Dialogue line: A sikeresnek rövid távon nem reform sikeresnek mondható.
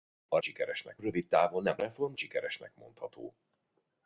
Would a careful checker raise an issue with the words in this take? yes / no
no